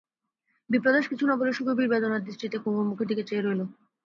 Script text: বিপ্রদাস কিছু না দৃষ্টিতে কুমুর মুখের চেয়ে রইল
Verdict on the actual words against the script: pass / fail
fail